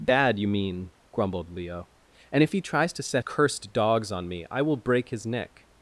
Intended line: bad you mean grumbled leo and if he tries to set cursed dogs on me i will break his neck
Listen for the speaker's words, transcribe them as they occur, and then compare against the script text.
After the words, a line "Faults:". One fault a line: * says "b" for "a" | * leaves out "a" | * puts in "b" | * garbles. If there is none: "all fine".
bad you mean grumbled leo and if he tries to set cursed dogs on me i will break his neck
Faults:
all fine